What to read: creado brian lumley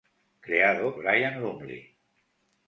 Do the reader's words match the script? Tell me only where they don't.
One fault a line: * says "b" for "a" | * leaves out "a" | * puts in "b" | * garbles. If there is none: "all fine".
all fine